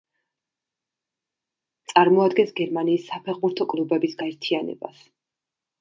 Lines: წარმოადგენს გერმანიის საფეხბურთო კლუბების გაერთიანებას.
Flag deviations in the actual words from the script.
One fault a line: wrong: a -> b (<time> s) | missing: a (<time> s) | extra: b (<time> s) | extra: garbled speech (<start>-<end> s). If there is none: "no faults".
no faults